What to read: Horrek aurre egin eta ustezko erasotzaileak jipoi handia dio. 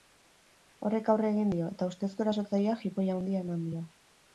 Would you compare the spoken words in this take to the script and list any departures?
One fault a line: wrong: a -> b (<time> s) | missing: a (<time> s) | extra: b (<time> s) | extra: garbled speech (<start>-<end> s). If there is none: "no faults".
extra: dio (1.6 s)
extra: eman (3.5 s)